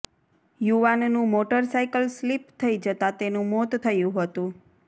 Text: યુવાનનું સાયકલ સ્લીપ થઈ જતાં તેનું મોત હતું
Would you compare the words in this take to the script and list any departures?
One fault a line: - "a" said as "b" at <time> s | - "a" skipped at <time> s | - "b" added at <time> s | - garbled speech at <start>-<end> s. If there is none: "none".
- "મોટર" added at 1.3 s
- "થયું" added at 3.8 s